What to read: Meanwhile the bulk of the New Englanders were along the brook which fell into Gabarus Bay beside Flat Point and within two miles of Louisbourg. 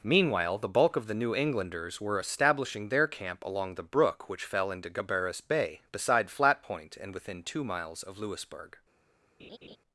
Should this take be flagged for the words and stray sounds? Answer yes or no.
yes